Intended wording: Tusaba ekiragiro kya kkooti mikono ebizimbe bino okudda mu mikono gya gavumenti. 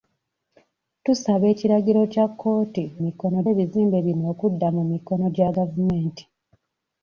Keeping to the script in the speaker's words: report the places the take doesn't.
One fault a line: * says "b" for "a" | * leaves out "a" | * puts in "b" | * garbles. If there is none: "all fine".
all fine